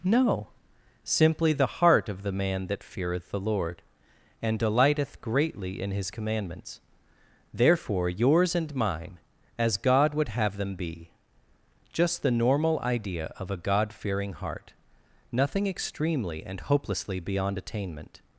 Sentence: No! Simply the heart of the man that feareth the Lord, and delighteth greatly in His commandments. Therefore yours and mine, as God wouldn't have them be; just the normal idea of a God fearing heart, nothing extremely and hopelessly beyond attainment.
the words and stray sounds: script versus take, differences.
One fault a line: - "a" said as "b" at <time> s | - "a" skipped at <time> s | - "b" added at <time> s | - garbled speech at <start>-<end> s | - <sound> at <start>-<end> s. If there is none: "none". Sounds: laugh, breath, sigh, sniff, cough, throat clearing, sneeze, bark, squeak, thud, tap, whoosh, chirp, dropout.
- "wouldn't" said as "would" at 10.2 s